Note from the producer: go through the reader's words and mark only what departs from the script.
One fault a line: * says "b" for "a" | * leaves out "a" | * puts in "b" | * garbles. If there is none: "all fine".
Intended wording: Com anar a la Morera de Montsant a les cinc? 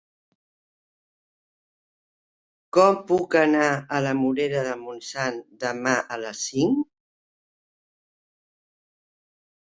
* puts in "puc"
* puts in "demà"